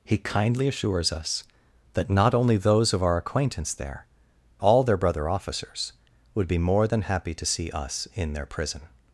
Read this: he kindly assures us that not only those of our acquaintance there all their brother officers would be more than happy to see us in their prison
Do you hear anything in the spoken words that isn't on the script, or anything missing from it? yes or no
no